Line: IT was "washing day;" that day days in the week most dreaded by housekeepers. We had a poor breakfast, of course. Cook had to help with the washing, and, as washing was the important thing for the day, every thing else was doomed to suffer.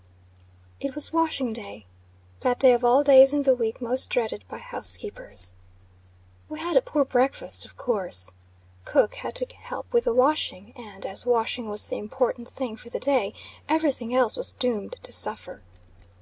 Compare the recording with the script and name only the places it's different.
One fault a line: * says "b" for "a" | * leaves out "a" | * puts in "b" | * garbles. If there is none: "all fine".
* puts in "of all"